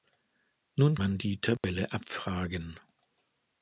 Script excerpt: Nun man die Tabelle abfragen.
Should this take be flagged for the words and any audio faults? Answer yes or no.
yes